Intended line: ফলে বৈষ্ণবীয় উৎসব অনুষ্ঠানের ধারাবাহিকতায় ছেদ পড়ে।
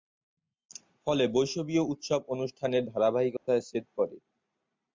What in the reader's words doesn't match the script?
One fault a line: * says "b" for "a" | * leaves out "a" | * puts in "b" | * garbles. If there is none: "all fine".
all fine